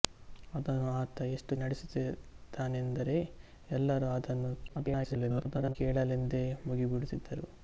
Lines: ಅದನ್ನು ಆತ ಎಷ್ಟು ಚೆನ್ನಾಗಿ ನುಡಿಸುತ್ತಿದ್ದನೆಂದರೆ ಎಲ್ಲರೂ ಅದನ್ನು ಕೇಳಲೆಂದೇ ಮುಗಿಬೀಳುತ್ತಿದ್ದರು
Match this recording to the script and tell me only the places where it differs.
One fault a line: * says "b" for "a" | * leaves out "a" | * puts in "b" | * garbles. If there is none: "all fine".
* leaves out "ಚೆನ್ನಾಗಿ"
* garbles